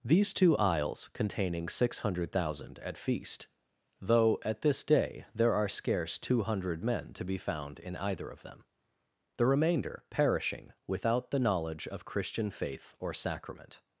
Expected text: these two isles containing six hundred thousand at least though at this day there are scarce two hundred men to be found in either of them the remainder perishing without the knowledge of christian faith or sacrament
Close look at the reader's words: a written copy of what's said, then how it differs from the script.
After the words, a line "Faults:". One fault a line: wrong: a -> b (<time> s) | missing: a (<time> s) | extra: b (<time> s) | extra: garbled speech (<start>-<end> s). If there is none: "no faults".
these two isles containing six hundred thousand at feast though at this day there are scarce two hundred men to be found in either of them the remainder perishing without the knowledge of christian faith or sacrament
Faults:
wrong: least -> feast (3.0 s)